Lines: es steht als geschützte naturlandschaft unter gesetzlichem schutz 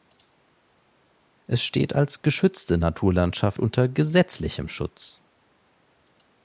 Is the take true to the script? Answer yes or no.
yes